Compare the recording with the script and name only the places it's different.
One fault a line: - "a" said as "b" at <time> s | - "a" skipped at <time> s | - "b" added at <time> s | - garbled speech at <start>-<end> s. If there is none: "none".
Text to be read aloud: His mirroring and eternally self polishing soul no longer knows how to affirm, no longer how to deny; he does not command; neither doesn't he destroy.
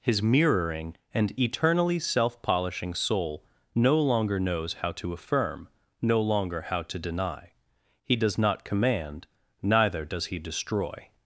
- "doesn't" said as "does" at 10.0 s